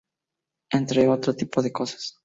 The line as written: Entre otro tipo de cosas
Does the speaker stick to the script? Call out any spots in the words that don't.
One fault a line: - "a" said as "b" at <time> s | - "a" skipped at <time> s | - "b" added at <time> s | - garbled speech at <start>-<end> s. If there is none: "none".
none